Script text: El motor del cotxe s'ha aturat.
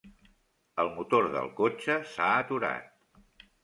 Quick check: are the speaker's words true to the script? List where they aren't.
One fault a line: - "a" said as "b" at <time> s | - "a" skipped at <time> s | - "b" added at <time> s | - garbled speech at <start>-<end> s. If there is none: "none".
none